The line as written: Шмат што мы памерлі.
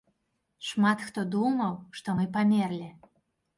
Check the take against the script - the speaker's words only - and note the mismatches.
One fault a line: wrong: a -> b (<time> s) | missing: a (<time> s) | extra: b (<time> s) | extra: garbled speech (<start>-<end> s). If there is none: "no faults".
extra: хто думаў (1.1 s)